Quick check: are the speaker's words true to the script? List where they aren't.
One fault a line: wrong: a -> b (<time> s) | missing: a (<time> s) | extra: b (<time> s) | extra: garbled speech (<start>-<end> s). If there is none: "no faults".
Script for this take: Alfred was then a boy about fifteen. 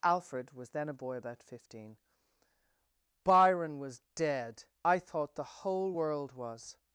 extra: Byron was dead I thought the whole world was (3.2 s)